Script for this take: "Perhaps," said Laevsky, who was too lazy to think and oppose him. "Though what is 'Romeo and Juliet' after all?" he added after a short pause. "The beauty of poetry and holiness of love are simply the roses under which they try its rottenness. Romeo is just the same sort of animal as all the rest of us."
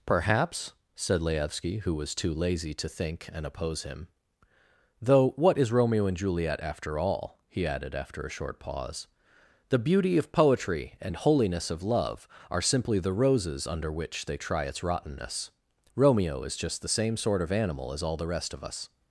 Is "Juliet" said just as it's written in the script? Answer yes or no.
yes